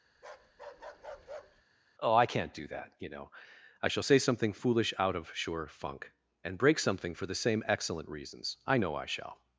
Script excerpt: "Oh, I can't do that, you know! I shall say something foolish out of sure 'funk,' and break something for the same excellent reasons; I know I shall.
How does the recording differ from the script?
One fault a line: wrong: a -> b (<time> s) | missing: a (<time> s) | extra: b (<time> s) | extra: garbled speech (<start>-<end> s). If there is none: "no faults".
no faults